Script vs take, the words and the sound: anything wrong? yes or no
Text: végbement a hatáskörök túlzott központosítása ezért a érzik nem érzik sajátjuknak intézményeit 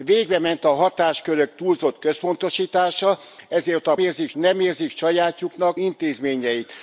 no